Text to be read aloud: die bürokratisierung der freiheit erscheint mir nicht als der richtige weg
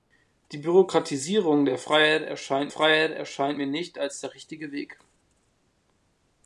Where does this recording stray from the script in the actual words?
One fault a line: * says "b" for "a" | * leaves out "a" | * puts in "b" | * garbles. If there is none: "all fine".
* puts in "freiheit erscheint"